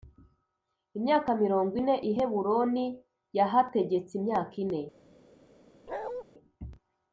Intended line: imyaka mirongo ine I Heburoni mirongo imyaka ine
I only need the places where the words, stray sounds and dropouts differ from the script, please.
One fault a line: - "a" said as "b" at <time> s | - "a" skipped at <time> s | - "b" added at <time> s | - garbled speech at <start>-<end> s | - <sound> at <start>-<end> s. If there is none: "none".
- "mirongo" said as "yahategetse" at 3.4 s
- bark at 5.9-6.2 s